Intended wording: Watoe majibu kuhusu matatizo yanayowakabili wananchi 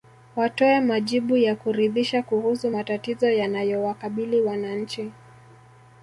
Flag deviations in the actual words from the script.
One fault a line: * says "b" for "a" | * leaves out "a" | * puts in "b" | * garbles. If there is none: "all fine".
* puts in "ya kuridhisha"